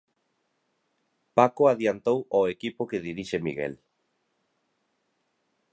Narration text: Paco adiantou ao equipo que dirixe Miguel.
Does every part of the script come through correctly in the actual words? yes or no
yes